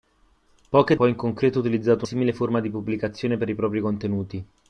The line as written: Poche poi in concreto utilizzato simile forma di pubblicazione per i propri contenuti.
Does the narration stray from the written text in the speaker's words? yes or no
no